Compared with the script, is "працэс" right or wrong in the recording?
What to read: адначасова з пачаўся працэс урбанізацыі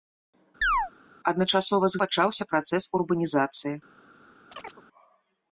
right